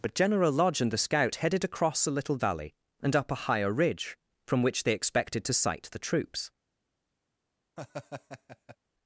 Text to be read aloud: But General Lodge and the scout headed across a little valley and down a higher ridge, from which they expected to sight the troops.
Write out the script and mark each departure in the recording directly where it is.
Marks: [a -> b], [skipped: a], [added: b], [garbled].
But General Lodge and the scout headed across a little valley and [down -> up] a higher ridge, from which they expected to sight the troops.